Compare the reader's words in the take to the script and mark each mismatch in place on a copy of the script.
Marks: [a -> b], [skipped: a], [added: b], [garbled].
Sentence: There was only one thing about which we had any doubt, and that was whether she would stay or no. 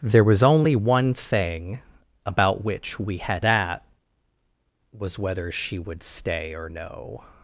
There was only one thing about which we had [skipped: any doubt, and] that was whether she would stay or no.